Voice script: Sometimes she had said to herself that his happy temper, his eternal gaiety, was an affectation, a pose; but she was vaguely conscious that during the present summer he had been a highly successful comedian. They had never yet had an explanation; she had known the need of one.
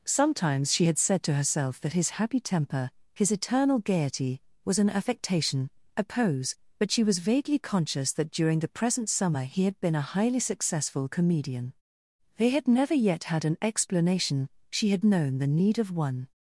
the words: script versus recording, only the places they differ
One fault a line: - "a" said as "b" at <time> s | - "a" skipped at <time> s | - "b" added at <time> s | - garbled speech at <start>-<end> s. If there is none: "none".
none